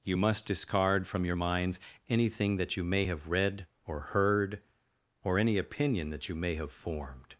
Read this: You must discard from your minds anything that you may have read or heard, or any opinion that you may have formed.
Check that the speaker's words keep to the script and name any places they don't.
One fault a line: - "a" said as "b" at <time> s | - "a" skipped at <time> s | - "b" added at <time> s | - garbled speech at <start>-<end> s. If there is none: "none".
none